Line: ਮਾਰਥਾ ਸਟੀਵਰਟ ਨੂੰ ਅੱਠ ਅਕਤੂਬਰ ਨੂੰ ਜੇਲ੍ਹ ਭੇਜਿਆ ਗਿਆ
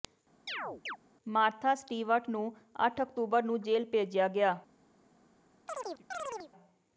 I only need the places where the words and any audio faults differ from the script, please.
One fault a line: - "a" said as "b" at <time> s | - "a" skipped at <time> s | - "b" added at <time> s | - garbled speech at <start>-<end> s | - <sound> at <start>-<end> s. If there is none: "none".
- chirp at 0.5-1.0 s
- chirp at 5.7-6.5 s